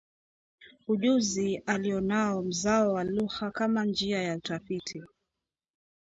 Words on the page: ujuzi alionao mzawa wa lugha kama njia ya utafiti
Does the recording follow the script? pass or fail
pass